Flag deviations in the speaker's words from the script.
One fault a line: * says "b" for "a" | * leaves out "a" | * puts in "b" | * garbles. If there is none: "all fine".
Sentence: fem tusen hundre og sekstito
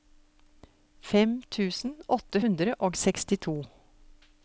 * puts in "åtte"